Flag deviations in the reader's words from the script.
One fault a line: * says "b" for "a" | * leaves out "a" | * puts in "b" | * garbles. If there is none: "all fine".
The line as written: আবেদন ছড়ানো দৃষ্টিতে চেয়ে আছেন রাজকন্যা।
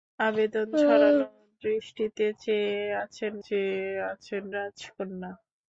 * puts in "চেয়ে আছেন"